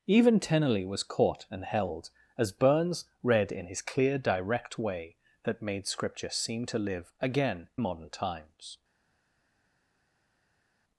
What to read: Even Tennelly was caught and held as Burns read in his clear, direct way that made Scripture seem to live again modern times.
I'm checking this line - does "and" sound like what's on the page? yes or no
yes